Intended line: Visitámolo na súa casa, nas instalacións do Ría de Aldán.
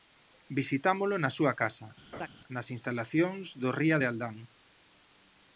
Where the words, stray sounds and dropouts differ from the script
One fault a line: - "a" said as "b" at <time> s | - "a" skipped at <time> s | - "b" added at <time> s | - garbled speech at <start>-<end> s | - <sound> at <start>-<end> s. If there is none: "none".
- laugh at 2.1-2.3 s